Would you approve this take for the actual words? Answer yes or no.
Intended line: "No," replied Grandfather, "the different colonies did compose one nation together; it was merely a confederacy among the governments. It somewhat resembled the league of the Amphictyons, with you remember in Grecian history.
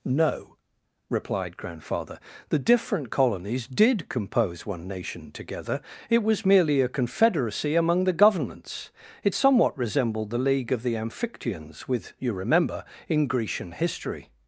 yes